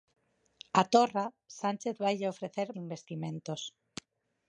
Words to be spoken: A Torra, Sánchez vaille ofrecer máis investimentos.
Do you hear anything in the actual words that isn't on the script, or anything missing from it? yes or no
yes